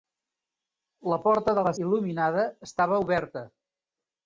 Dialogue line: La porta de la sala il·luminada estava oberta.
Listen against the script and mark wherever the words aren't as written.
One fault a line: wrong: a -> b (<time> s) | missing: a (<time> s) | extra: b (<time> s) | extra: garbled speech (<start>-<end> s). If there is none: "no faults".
missing: sala (1.7 s)